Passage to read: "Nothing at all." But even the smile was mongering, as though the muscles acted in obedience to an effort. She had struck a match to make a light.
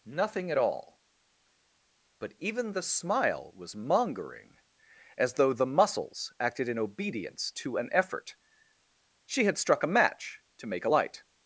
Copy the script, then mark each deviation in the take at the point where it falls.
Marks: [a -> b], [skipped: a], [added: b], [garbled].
"Nothing at all." But even the smile was mongering, as though the muscles acted in obedience to an effort. She had struck a match to make a light.